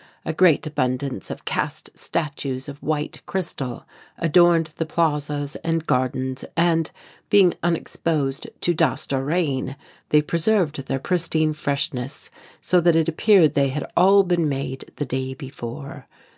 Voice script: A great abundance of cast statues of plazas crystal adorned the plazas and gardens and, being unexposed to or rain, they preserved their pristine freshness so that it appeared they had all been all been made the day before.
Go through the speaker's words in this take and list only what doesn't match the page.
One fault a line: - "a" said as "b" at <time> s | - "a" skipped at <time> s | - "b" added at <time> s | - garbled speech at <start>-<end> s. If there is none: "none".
- "plazas" said as "white" at 2.8 s
- "dust" added at 8.7 s
- "all been" skipped at 14.5 s